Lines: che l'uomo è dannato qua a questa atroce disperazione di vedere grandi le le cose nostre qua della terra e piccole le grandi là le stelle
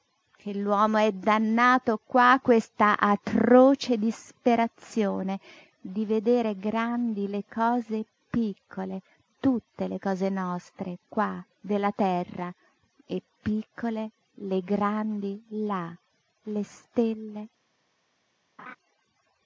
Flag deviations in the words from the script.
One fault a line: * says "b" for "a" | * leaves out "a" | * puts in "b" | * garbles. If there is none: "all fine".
* puts in "cose piccole tutte"